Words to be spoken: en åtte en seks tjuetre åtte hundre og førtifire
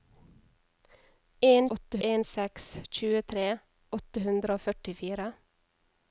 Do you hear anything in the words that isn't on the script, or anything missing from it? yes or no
no